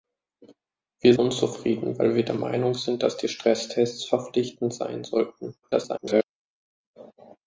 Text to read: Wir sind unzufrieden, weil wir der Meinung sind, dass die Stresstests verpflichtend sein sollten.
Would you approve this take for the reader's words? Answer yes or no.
no